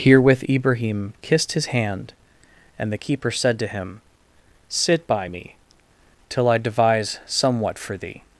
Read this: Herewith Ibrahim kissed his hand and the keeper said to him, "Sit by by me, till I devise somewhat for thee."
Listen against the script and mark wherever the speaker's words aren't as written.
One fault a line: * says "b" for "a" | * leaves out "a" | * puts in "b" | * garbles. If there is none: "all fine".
* leaves out "by"